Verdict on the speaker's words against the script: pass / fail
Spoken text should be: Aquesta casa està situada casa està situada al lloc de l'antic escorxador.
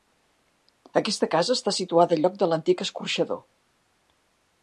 fail